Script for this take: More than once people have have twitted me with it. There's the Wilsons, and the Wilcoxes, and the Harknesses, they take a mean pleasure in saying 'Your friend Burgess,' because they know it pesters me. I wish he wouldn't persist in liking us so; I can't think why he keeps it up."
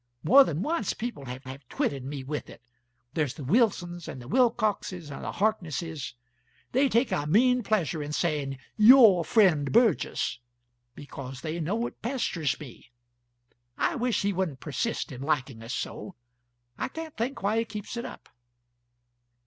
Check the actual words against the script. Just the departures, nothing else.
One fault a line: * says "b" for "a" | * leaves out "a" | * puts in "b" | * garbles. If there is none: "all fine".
all fine